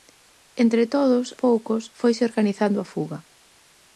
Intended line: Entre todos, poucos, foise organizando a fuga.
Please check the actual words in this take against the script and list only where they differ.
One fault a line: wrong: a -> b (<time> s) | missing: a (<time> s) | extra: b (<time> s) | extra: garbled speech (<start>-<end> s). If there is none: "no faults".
no faults